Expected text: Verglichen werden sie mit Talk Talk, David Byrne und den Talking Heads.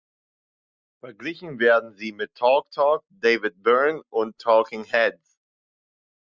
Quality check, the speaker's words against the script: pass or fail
fail